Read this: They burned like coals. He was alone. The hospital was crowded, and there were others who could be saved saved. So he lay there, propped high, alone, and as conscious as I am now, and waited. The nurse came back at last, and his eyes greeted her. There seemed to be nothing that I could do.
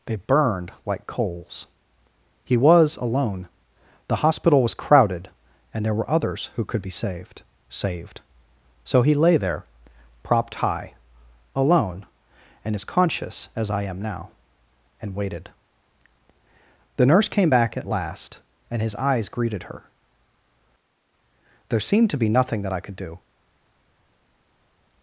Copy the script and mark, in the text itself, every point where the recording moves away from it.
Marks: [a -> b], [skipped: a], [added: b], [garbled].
They burned like coals. He was alone. The hospital was crowded, and there were others who could be saved saved. So he lay there, propped high, alone, and as conscious as I am now, and waited. The nurse came back at last, and his eyes greeted her. There seemed to be nothing that I could do.